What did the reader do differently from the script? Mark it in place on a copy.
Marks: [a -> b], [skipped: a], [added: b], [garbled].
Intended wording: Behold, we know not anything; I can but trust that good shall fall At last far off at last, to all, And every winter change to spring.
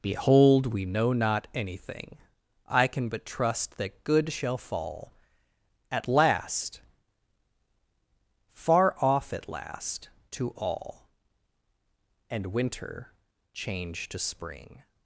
Behold, we know not anything; I can but trust that good shall fall At last far off at last, to all, And [skipped: every] winter change to spring.